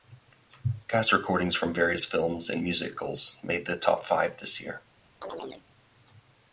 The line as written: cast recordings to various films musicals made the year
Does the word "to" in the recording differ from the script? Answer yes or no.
yes